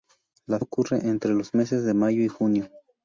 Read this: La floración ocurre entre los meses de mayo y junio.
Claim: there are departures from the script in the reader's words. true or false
true